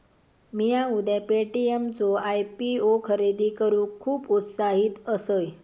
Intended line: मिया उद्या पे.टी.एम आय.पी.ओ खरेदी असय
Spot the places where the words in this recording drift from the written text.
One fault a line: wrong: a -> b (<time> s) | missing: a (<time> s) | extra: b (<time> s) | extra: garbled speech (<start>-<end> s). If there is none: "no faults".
extra: चो (1.9 s)
extra: करूक खुप उत्साहित (3.6 s)